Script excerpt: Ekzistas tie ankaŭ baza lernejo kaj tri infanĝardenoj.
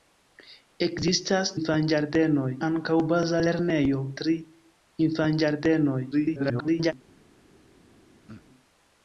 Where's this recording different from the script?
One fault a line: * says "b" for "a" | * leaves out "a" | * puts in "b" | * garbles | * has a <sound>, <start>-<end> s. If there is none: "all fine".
* says "infanĝardenoj" for "tie"
* leaves out "kaj"
* garbles
* has a throat clearing, 8.3-8.4 s